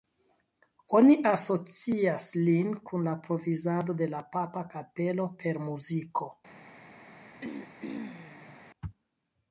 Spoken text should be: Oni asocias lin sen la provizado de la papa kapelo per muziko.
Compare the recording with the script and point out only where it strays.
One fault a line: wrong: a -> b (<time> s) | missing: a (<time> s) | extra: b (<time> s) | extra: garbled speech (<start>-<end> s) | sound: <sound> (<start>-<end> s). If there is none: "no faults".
wrong: sen -> kun (2.9 s)
sound: throat clearing (7.4-8.6 s)